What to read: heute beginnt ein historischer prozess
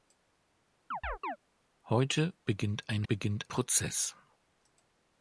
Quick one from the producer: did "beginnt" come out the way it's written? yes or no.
yes